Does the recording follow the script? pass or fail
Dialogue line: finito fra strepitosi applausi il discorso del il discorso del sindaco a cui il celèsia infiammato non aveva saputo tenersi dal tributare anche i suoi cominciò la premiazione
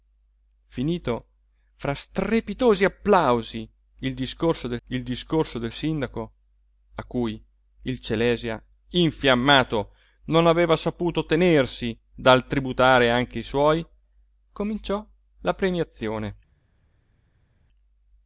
pass